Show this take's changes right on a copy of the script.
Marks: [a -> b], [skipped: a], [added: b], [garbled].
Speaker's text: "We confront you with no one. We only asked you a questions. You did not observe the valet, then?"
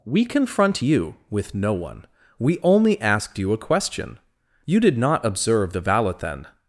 "We confront you with no one. We only asked you a [questions. -> question] You did not observe the valet, then?"